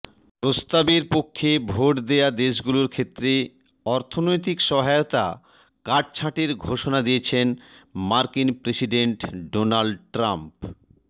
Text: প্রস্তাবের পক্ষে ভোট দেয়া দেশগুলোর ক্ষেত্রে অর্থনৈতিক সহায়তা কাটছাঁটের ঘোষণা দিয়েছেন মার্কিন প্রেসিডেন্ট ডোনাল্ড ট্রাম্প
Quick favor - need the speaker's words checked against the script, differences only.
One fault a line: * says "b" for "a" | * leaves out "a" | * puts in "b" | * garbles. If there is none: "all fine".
all fine